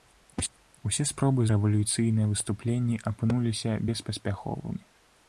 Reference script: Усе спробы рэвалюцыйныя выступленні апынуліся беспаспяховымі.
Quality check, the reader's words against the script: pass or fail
pass